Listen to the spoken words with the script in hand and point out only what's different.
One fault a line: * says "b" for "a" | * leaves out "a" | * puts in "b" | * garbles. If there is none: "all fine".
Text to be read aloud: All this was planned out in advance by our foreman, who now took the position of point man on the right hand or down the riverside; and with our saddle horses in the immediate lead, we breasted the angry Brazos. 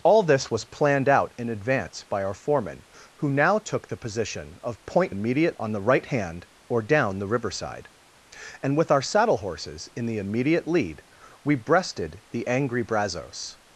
* says "immediate" for "man"